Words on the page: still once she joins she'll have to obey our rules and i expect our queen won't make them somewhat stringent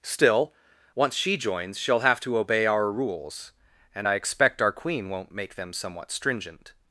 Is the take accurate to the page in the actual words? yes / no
yes